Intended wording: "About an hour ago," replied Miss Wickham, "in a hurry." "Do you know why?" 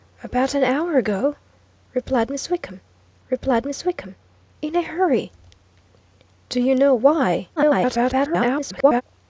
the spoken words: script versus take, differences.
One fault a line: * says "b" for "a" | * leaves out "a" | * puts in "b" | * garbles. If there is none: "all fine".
* puts in "replied Miss Wickham"
* garbles